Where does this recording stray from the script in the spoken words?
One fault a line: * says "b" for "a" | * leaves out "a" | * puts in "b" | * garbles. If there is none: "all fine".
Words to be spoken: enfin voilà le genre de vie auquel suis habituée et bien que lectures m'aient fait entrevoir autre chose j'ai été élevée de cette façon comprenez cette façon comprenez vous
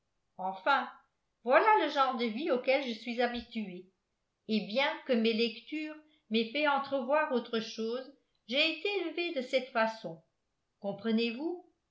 * puts in "je"
* puts in "mes"
* leaves out "cette façon comprenez"